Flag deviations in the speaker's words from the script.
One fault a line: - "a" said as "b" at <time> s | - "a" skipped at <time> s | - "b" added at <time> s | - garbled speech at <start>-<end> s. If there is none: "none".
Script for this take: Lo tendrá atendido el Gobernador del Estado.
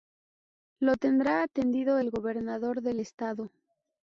none